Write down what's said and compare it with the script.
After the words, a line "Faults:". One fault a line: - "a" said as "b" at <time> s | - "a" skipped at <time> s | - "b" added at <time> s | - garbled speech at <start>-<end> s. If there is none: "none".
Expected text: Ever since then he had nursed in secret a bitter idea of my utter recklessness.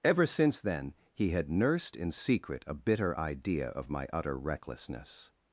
Ever since then he had nursed in secret a bitter idea of my utter recklessness.
Faults:
none